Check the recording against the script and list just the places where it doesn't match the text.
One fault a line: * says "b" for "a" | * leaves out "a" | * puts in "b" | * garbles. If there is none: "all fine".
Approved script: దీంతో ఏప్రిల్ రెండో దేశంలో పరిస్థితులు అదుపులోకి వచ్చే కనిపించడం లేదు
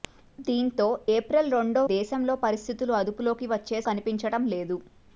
all fine